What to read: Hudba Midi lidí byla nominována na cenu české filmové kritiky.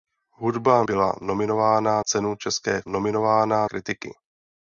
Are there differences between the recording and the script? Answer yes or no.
yes